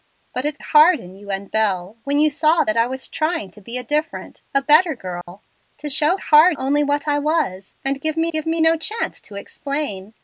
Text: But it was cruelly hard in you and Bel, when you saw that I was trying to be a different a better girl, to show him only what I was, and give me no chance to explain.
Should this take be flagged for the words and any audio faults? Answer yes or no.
yes